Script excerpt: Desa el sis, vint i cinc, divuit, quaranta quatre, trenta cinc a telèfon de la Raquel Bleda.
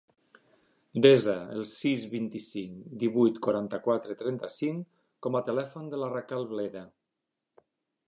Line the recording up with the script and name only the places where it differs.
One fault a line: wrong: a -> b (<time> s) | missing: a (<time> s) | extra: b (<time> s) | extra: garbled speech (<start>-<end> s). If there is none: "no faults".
extra: com (5.3 s)